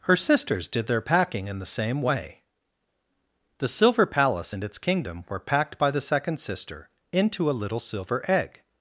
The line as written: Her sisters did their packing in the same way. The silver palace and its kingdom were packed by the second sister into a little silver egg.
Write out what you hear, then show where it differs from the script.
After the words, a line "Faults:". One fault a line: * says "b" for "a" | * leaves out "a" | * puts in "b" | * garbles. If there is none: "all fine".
Her sisters did their packing in the same way. The silver palace and its kingdom were packed by the second sister into a little silver egg.
Faults:
all fine